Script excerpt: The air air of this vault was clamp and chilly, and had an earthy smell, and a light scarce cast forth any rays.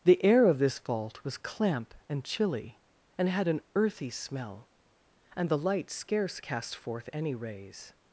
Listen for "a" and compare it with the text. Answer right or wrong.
wrong